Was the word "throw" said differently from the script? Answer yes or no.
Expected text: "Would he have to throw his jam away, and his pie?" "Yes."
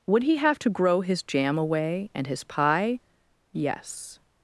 yes